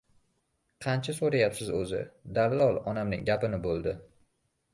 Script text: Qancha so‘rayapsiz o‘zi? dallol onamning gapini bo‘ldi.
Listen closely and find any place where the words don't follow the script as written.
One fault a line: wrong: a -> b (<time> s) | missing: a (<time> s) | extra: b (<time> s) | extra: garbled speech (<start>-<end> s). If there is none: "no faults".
no faults